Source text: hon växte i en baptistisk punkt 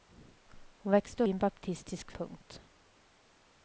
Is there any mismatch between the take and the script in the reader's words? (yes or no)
no